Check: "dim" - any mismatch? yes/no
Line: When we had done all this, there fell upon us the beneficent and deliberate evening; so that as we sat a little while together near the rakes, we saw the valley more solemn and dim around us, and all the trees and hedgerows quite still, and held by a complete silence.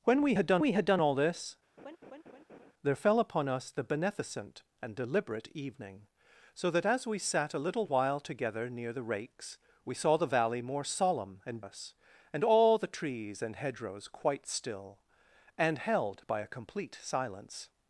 yes